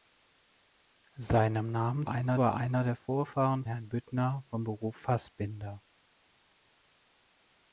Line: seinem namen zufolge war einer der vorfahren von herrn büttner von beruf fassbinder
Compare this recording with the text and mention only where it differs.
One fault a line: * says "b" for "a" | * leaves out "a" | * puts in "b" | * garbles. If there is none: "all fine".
* says "einer" for "zufolge"
* leaves out "von"